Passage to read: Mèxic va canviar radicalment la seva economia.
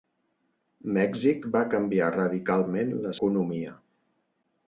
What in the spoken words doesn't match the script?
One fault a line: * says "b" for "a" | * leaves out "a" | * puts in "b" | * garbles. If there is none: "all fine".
* leaves out "seva"